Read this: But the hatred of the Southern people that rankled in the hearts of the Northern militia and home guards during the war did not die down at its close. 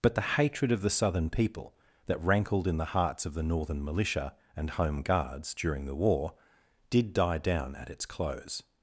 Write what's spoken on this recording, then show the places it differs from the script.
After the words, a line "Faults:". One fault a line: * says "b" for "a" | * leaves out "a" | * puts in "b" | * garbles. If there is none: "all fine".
But the hatred of the Southern people that rankled in the hearts of the Northern militia and home guards during the war did die down at its close.
Faults:
* leaves out "not"